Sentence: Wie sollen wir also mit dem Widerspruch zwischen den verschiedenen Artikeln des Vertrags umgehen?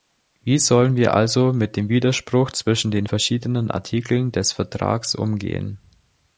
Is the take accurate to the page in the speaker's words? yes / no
yes